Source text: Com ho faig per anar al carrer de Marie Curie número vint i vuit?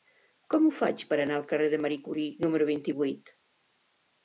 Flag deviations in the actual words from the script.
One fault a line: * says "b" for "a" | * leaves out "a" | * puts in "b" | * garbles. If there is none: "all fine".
all fine